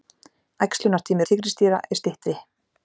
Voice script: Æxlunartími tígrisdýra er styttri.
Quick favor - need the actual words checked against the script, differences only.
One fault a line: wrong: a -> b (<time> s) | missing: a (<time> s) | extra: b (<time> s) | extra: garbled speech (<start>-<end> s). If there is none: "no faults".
no faults